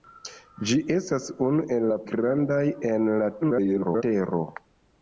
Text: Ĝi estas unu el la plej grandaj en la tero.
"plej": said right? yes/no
no